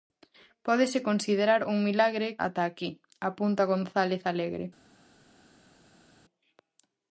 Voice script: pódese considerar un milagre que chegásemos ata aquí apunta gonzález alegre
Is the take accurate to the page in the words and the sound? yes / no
no